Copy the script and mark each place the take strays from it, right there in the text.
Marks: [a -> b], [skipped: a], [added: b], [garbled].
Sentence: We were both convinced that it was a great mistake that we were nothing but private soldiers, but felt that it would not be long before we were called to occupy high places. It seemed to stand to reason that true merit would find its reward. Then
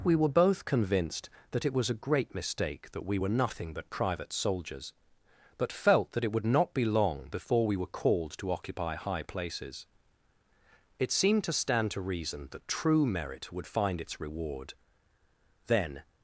We were both convinced that it was a great mistake that we were nothing but private soldiers, but felt that it would not be long before we were called to occupy high places. It seemed to stand to reason that true merit would find its reward. Then